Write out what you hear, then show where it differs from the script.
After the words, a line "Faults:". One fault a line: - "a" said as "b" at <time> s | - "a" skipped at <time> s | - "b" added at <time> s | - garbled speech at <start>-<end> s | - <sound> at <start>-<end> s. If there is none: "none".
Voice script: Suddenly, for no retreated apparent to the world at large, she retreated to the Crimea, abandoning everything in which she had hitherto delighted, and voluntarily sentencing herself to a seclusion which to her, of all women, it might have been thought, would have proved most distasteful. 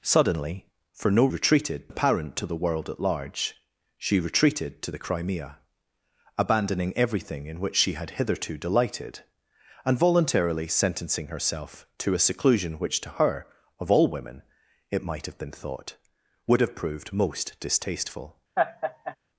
Suddenly, for no retreated apparent to the world at large, she retreated to the Crimea, abandoning everything in which she had hitherto delighted, and voluntarily sentencing herself to a seclusion which to her, of all women, it might have been thought, would have proved most distasteful.
Faults:
- laugh at 18.6-19.2 s